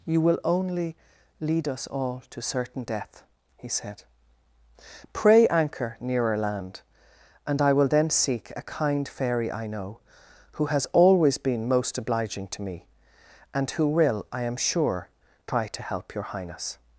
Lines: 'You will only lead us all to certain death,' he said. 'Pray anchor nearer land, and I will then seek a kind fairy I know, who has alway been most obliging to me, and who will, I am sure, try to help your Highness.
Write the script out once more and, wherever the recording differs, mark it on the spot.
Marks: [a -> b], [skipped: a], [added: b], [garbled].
'You will only lead us all to certain death,' he said. 'Pray anchor nearer land, and I will then seek a kind fairy I know, who has [alway -> always] been most obliging to me, and who will, I am sure, try to help your Highness.